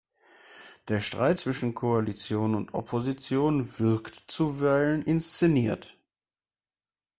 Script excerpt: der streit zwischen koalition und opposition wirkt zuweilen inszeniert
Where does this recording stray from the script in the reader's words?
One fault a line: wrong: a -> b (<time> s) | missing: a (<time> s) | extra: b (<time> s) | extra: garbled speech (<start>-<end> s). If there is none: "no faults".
no faults